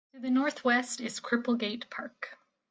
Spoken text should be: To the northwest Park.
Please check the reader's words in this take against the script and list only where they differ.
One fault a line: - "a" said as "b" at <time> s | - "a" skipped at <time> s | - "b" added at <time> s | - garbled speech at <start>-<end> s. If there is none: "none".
- "is Cripplegate" added at 1.0 s